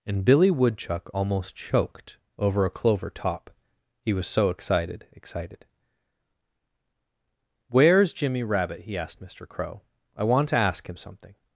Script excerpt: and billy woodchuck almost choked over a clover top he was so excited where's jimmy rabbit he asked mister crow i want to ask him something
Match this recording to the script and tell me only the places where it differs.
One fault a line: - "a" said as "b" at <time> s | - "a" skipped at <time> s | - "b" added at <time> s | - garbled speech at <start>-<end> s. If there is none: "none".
- "excited" added at 5.1 s